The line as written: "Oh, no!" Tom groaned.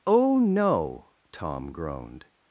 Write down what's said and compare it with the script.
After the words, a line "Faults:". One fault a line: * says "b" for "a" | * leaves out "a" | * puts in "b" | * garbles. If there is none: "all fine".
"Oh, no!" Tom groaned.
Faults:
all fine